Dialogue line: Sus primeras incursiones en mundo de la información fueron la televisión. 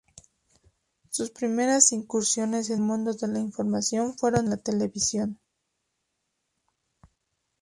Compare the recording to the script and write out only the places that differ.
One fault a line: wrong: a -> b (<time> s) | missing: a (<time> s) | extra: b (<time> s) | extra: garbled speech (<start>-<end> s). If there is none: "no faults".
no faults